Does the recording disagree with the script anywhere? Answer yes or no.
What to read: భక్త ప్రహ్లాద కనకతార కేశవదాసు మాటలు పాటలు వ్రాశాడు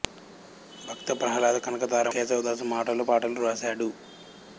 no